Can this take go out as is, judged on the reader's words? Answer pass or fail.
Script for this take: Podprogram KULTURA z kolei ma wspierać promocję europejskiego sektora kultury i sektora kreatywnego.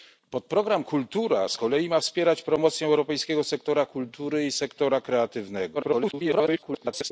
fail